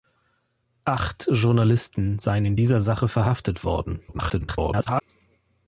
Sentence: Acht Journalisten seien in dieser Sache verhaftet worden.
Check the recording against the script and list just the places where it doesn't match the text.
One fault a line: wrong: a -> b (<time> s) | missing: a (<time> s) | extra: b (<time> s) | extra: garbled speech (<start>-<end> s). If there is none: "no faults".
extra: garbled speech (4.1-5.0 s)